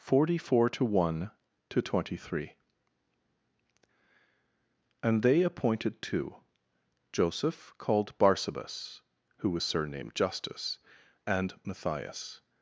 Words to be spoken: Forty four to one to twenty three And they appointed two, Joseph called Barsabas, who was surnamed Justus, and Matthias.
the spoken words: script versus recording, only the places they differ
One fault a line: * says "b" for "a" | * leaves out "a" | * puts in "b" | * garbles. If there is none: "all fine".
all fine